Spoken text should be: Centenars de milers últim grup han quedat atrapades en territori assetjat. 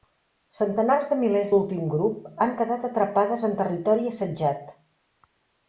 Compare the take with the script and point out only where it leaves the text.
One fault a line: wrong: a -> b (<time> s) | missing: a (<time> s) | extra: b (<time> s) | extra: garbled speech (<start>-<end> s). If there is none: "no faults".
no faults